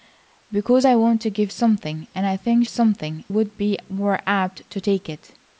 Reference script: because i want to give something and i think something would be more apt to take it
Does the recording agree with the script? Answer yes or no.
yes